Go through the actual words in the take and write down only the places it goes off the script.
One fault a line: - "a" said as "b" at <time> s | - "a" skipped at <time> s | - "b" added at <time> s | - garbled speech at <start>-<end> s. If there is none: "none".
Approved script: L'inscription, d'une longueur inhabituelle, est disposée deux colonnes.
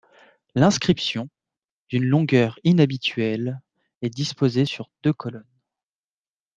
- "sur" added at 4.7 s